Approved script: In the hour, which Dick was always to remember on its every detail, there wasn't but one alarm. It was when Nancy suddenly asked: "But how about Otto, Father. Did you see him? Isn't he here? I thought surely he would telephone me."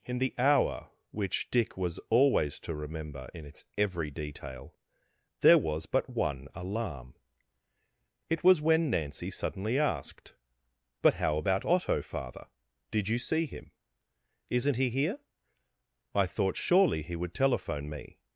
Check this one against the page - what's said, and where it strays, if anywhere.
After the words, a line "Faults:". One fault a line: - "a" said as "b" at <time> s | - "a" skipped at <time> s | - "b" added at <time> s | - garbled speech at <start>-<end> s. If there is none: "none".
In the hour, which Dick was always to remember in its every detail, there was but one alarm. It was when Nancy suddenly asked: "But how about Otto, Father. Did you see him? Isn't he here? I thought surely he would telephone me."
Faults:
- "on" said as "in" at 3.3 s
- "wasn't" said as "was" at 5.6 s